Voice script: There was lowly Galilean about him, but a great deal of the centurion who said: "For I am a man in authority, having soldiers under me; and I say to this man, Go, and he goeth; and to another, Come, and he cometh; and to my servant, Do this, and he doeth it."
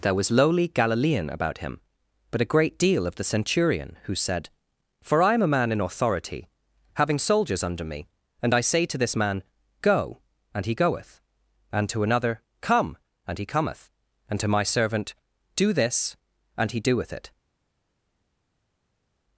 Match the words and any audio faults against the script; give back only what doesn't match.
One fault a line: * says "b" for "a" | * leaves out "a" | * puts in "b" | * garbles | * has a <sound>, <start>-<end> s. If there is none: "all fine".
all fine